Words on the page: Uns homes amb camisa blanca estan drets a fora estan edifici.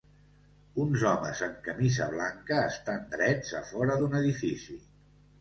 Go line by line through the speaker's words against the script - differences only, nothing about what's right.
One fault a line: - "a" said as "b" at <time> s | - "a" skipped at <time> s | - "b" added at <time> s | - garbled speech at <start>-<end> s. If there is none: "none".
- "estan" said as "d'un" at 4.0 s